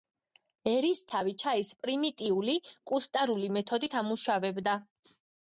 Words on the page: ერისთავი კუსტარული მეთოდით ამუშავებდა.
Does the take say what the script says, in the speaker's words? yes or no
no